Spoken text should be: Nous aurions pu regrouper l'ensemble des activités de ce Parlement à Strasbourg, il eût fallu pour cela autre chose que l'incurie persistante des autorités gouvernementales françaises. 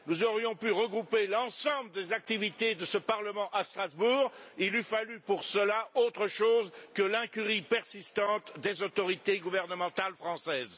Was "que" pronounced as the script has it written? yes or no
yes